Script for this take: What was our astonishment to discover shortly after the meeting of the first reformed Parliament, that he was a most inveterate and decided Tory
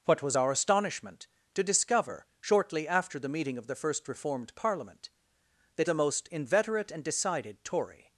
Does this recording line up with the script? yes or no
no